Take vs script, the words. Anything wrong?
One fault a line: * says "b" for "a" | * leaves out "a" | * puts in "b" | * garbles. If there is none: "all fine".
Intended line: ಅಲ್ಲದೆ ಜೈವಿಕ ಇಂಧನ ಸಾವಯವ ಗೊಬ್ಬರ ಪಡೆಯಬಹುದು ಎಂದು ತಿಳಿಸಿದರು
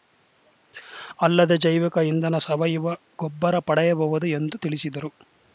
all fine